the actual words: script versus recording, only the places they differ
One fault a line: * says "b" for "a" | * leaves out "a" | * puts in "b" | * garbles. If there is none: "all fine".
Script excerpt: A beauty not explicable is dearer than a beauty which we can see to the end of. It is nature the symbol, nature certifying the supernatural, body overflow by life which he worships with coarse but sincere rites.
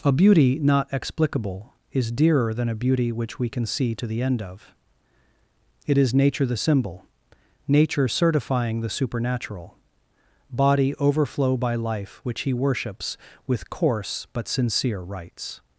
all fine